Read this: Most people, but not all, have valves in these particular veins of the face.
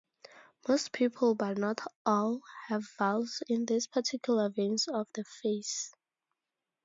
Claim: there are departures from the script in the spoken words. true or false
false